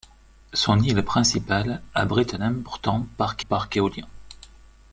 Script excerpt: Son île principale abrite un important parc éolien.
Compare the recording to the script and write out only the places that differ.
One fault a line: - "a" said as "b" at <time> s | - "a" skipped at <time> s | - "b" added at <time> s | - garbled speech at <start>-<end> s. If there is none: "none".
- "parc" added at 3.5 s